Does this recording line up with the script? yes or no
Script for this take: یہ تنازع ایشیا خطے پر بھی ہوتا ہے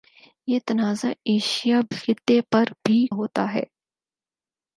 yes